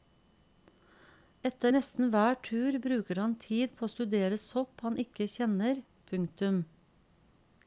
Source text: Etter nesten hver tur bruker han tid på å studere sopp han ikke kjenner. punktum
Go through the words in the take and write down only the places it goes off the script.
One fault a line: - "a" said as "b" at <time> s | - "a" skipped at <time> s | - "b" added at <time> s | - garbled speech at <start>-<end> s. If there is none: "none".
none